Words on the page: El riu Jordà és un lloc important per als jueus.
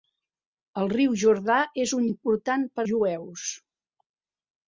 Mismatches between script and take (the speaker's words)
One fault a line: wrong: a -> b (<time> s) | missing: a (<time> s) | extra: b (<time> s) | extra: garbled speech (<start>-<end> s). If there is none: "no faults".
missing: lloc (2.1 s)
missing: als (2.9 s)